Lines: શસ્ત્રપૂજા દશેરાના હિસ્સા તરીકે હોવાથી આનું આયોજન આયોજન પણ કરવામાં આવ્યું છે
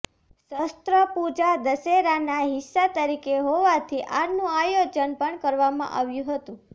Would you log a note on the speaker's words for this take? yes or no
yes